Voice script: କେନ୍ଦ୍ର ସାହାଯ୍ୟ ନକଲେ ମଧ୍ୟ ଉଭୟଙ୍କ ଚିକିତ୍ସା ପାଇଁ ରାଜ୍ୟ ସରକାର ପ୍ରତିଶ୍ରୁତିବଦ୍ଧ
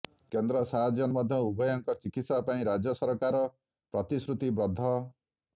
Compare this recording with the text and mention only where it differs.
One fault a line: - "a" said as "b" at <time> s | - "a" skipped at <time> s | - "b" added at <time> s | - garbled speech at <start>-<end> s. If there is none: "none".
- "ନକଲେ" skipped at 1.1 s